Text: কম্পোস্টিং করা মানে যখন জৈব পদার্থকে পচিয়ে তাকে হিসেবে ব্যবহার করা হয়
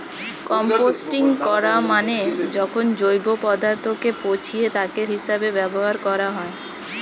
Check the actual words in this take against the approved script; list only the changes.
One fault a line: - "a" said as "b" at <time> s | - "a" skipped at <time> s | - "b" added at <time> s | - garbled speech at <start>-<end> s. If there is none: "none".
none